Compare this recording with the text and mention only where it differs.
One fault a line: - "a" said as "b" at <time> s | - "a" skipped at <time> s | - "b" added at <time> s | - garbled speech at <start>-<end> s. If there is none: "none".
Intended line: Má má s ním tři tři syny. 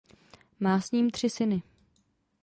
- "má" skipped at 0.8 s
- "tři" skipped at 1.3 s